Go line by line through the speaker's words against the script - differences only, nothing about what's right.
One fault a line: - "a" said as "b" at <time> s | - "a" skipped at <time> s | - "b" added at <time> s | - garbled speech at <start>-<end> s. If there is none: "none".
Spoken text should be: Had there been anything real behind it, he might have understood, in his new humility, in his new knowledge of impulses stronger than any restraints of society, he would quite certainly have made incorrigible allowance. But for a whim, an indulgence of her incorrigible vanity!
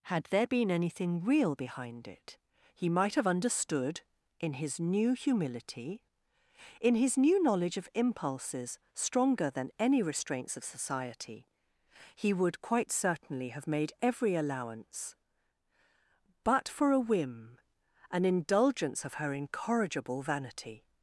- "incorrigible" said as "every" at 14.0 s